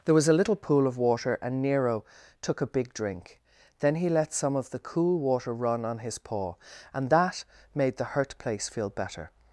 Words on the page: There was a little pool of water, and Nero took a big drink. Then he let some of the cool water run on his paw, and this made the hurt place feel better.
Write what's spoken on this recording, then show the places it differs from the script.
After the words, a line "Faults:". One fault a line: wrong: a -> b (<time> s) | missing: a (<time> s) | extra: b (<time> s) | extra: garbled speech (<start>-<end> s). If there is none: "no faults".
There was a little pool of water, and Nero took a big drink. Then he let some of the cool water run on his paw, and that made the hurt place feel better.
Faults:
wrong: this -> that (7.1 s)